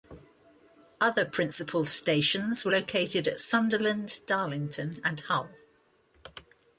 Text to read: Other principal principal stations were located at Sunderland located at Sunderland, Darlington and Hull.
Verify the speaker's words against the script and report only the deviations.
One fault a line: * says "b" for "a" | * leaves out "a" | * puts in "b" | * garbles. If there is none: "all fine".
* leaves out "principal"
* leaves out "located at Sunderland"